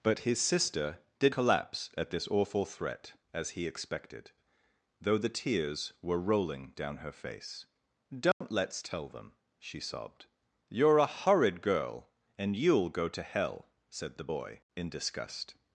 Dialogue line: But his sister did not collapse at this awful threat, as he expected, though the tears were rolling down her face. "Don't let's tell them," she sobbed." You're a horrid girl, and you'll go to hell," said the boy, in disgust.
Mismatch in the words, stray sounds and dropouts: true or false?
true